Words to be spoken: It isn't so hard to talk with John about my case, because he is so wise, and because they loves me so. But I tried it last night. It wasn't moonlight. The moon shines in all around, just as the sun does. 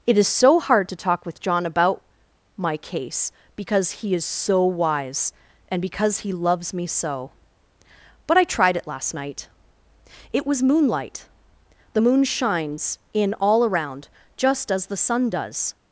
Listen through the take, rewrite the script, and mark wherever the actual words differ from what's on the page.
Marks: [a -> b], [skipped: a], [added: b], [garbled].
It [isn't -> is] so hard to talk with John about my case, because he is so wise, and because [they -> he] loves me so. But I tried it last night. It [wasn't -> was] moonlight. The moon shines in all around, just as the sun does.